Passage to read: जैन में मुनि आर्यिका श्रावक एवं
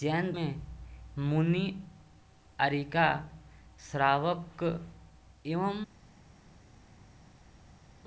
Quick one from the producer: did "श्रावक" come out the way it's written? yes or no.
yes